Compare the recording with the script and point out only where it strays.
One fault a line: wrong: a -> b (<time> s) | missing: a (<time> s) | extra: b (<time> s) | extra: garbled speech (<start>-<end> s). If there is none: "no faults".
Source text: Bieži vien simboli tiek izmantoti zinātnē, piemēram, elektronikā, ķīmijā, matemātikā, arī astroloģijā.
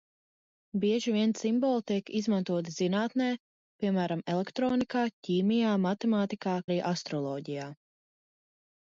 no faults